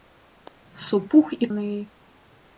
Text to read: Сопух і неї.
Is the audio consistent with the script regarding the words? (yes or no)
yes